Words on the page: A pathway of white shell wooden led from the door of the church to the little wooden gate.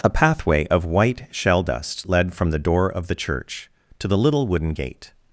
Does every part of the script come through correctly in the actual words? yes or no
no